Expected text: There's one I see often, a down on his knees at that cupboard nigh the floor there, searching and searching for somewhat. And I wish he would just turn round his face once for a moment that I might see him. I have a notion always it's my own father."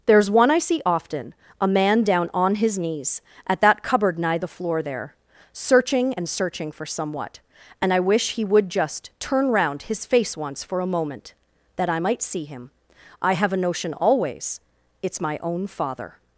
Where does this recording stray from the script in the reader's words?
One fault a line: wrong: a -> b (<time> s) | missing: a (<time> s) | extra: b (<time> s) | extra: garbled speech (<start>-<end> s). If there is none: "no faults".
extra: man (1.7 s)